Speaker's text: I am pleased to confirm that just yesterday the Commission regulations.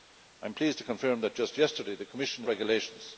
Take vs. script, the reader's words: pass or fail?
pass